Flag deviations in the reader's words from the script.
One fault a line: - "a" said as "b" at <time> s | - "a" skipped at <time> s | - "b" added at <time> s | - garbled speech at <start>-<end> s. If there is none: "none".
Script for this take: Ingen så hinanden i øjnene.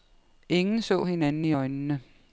none